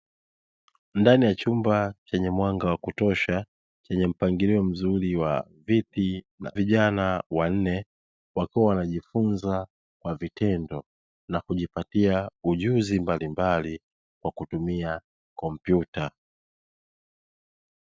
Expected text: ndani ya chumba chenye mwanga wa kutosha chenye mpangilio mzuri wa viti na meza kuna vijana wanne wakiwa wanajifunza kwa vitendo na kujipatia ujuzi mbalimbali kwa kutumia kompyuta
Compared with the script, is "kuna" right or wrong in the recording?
wrong